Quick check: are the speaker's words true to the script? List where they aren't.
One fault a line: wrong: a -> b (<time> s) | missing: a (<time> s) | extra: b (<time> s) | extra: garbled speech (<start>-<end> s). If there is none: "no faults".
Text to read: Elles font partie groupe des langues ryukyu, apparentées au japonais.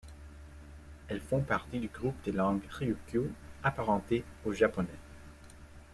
extra: du (1.8 s)